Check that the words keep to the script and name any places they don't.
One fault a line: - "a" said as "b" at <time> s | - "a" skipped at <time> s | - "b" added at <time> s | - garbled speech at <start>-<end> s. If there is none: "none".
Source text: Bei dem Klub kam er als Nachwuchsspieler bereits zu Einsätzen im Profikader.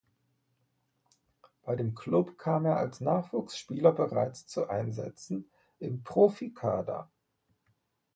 none